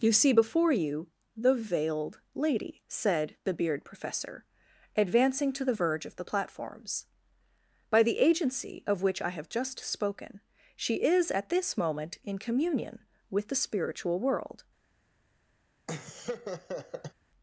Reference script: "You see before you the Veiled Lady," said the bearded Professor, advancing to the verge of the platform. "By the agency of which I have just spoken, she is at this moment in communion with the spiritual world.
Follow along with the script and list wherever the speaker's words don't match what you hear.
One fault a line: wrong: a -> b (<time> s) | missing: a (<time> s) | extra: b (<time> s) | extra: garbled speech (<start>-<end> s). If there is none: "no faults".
wrong: bearded -> beard (3.5 s)
wrong: platform -> platforms (6.2 s)